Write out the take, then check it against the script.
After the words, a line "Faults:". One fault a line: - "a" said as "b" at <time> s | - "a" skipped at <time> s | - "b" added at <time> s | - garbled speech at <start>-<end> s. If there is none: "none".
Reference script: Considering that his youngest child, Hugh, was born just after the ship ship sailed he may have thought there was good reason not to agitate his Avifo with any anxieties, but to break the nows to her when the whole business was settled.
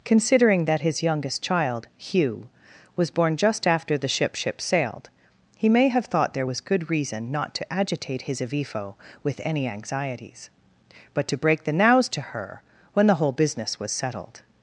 Considering that his youngest child, Hugh, was born just after the ship ship sailed he may have thought there was good reason not to agitate his Avifo with any anxieties, but to break the nows to her when the whole business was settled.
Faults:
none